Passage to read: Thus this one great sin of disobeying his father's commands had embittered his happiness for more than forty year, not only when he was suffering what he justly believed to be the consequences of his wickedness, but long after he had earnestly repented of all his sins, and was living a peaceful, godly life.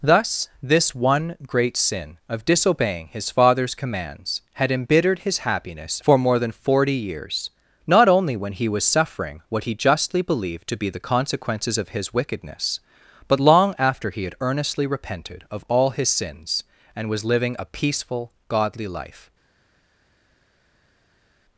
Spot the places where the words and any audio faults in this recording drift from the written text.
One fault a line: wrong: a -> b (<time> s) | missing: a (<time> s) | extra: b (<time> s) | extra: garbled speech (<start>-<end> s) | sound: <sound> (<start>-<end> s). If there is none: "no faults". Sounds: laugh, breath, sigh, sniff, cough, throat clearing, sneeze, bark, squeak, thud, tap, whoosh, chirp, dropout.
wrong: year -> years (7.0 s)